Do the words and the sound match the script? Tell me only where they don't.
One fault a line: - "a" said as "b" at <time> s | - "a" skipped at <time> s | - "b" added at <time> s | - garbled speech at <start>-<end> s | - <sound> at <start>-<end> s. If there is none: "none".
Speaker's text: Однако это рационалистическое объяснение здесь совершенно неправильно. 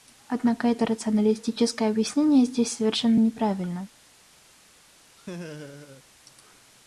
- laugh at 5.2-6.0 s